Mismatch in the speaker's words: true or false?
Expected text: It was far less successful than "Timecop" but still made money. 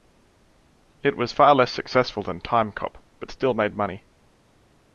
false